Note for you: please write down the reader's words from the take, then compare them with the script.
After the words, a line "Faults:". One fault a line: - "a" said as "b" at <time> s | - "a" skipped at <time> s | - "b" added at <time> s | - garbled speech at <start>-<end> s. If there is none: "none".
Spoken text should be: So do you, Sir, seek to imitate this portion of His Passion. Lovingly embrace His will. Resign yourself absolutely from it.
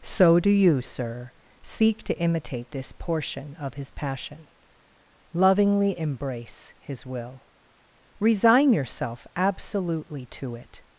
So do you, Sir, seek to imitate this portion of His Passion. Lovingly embrace His will. Resign yourself absolutely to it.
Faults:
- "from" said as "to" at 10.3 s